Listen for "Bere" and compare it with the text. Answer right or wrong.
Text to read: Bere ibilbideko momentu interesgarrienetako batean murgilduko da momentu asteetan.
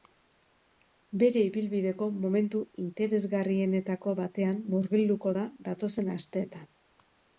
right